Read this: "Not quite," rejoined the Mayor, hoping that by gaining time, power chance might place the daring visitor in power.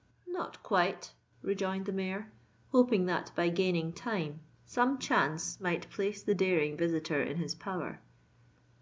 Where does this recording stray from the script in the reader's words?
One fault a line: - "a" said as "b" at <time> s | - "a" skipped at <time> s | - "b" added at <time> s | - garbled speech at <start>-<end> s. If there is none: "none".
- "power" said as "some" at 4.7 s
- "his" added at 7.4 s